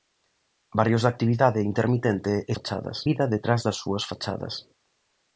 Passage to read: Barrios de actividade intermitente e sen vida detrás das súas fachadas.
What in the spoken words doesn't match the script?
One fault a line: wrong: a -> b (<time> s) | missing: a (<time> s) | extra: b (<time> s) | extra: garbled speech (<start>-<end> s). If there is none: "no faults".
wrong: sen -> fachadas (2.5 s)